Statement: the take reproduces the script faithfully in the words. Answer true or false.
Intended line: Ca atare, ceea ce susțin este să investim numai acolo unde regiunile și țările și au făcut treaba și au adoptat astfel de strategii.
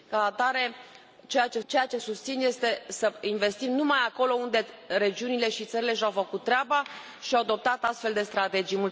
false